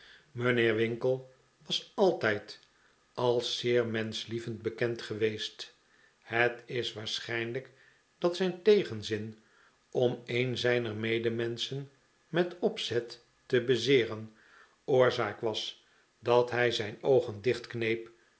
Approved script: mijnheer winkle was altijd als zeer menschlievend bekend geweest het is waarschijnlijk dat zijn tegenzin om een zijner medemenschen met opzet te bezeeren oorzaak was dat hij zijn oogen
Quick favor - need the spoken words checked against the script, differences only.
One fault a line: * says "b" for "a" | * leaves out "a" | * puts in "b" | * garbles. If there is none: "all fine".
all fine